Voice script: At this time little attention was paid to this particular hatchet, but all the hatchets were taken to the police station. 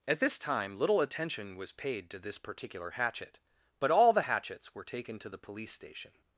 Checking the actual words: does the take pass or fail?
pass